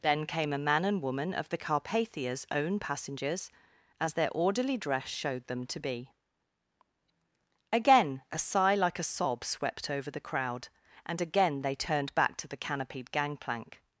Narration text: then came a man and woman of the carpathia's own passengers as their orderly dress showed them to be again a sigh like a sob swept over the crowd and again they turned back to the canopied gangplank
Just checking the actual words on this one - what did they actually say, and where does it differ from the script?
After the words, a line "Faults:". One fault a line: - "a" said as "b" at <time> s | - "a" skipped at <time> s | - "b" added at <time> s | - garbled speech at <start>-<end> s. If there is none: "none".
then came a man and woman of the carpathia's own passengers as their orderly dress showed them to be again a sigh like a sob swept over the crowd and again they turned back to the canopied gangplank
Faults:
none